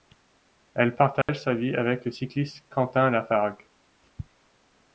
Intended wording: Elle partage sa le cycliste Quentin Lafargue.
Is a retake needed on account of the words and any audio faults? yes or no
yes